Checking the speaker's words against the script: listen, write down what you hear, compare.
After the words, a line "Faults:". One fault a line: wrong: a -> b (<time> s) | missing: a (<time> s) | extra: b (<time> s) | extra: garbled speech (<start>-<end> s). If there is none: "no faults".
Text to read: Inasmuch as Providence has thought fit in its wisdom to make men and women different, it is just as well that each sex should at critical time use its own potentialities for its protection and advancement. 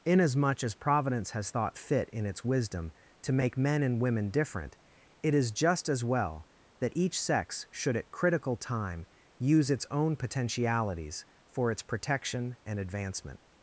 Inasmuch as Providence has thought fit in its wisdom to make men and women different, it is just as well that each sex should at critical time use its own potentialities for its protection and advancement.
Faults:
no faults